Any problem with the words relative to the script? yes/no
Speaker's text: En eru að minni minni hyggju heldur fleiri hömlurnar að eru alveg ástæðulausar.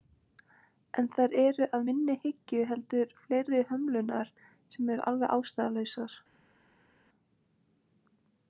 yes